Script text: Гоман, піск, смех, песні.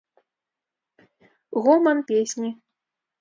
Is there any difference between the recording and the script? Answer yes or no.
yes